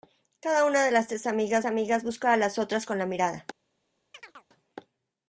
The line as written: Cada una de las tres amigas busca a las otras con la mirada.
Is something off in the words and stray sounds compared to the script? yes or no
yes